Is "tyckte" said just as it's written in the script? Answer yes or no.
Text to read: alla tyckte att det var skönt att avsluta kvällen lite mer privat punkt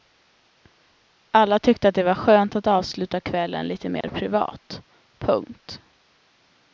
yes